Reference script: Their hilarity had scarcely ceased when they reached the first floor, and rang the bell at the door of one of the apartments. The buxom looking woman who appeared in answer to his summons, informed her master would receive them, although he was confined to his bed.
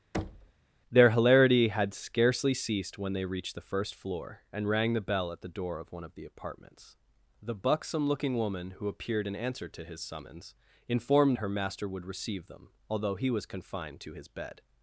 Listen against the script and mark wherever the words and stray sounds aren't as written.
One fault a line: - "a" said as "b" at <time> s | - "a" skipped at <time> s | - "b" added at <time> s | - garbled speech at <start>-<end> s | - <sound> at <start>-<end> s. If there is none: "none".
- thud at 0.1-0.5 s